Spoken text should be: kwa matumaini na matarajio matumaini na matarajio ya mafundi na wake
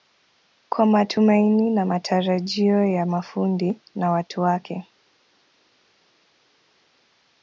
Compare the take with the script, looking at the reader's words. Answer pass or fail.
fail